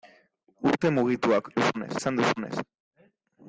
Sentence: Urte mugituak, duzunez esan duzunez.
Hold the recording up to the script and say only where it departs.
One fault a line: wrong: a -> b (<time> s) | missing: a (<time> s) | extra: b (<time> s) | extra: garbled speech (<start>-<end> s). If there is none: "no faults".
no faults